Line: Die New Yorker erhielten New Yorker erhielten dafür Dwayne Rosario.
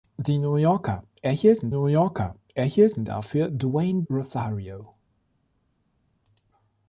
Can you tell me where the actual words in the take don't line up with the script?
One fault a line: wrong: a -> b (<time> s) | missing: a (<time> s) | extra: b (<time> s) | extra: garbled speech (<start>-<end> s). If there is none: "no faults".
no faults